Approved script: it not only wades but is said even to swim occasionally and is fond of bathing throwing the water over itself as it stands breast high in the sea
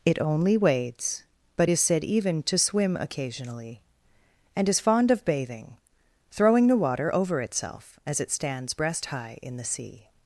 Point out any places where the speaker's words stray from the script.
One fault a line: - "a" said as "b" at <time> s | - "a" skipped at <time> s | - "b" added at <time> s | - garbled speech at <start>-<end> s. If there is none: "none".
- "not" skipped at 0.2 s